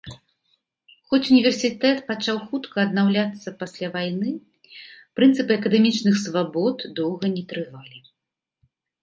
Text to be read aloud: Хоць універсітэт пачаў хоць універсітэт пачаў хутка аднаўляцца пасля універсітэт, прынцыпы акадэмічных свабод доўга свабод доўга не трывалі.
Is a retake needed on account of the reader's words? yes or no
yes